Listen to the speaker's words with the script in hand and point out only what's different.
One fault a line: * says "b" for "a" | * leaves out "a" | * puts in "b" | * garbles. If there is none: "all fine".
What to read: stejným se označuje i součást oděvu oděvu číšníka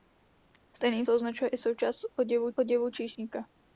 all fine